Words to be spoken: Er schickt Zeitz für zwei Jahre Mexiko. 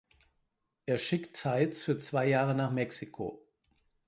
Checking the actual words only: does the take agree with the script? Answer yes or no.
no